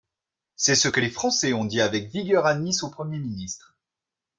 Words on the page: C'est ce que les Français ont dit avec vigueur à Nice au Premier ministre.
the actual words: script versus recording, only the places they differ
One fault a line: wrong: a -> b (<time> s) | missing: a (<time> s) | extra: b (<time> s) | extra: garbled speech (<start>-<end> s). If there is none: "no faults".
no faults